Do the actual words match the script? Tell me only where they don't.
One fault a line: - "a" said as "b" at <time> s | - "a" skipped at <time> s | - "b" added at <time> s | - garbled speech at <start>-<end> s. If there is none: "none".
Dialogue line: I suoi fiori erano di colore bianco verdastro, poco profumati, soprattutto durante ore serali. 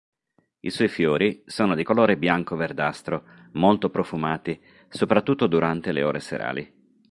- "erano" said as "sono" at 1.4 s
- "poco" said as "molto" at 3.5 s
- "le" added at 5.9 s